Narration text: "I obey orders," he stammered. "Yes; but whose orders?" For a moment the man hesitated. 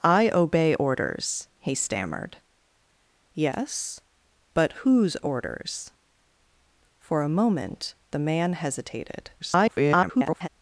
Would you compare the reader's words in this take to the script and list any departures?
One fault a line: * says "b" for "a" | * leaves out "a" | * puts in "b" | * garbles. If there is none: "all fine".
* garbles